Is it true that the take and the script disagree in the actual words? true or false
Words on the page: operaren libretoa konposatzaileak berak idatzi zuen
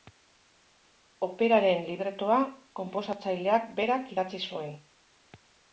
false